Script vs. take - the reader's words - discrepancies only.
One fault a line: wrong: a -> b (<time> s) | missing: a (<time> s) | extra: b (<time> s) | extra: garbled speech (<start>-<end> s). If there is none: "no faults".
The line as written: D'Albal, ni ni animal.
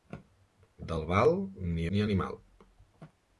no faults